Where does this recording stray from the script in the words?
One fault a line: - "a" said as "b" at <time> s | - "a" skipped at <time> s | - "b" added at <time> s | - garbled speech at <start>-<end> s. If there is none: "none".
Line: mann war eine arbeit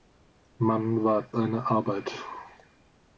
none